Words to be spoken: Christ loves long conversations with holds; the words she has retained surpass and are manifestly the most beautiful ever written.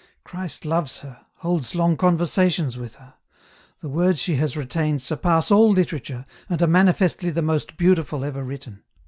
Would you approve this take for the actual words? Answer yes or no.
no